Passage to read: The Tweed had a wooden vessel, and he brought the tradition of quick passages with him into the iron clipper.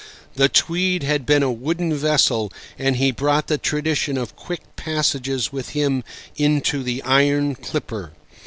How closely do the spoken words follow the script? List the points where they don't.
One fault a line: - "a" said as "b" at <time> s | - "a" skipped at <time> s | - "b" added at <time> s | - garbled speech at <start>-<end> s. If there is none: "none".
- "been" added at 1.3 s